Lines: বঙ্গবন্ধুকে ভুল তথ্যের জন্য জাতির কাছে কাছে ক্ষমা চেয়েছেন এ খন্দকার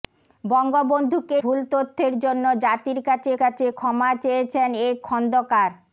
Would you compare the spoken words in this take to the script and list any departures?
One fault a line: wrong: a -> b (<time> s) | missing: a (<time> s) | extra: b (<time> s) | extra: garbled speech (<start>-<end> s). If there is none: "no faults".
no faults